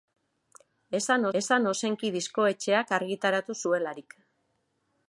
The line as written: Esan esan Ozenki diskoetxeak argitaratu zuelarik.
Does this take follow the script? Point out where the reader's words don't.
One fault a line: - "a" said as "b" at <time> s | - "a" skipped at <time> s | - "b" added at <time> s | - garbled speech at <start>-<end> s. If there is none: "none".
none